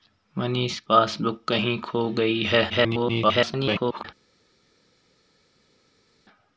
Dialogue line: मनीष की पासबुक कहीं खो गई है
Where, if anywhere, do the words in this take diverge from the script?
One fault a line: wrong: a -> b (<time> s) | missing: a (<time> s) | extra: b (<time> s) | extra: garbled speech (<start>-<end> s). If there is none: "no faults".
missing: की (0.8 s)
extra: garbled speech (2.7-4.1 s)